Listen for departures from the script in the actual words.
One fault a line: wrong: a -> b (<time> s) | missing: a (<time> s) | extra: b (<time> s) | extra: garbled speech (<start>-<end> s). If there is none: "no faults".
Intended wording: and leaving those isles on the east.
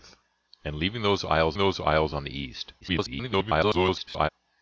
extra: those isles (1.6 s)
extra: garbled speech (2.8-4.3 s)